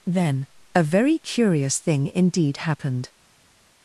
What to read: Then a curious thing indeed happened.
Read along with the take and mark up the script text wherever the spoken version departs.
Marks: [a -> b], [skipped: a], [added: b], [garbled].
Then a [added: very] curious thing indeed happened.